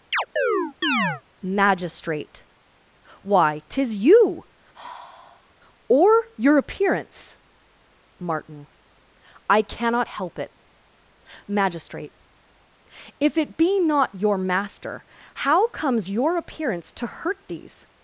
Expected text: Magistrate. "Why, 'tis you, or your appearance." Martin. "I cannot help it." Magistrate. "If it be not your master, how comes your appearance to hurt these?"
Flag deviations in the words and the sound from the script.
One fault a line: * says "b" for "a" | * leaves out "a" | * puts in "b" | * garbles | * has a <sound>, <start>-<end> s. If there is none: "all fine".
* has a chirp, 0.1-1.2 s
* has a sigh, 4.7-5.5 s